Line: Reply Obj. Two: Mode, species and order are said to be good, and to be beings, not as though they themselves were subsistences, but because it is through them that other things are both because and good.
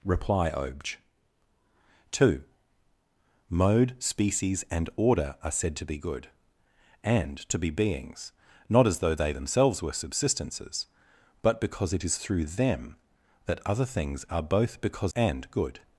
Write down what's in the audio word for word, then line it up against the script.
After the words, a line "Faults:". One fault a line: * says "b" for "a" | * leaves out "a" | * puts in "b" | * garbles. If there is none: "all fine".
Reply Obj. Two: Mode, species and order are said to be good, and to be beings, not as though they themselves were subsistences, but because it is through them that other things are both because and good.
Faults:
all fine